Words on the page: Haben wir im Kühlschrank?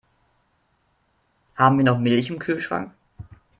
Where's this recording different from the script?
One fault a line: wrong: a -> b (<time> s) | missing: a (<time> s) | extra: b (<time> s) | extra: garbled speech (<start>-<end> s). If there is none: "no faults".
extra: noch Milch (1.8 s)